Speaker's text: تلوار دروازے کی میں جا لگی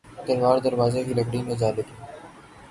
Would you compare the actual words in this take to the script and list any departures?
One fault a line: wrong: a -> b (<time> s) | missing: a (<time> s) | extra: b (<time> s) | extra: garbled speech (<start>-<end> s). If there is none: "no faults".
extra: لکڑی (1.2 s)